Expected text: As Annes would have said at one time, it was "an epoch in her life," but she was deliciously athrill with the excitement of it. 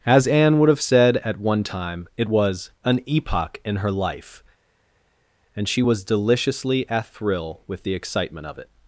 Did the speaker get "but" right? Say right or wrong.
wrong